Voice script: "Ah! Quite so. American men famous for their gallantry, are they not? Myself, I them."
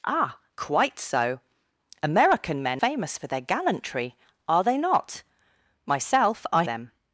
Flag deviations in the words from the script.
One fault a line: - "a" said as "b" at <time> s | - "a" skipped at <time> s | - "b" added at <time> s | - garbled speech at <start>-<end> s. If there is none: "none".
none